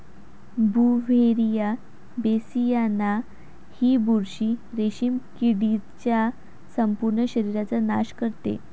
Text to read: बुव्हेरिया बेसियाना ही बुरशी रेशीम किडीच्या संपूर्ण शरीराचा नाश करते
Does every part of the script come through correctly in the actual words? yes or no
yes